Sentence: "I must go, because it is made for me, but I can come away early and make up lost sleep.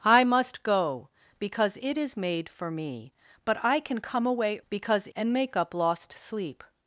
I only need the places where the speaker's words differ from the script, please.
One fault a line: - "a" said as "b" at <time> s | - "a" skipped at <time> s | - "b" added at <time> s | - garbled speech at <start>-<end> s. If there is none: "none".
- "early" said as "because" at 4.7 s